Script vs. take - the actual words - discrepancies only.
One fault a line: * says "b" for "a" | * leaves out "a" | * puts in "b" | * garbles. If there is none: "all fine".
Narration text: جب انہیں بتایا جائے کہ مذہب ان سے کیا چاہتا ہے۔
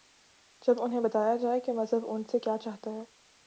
all fine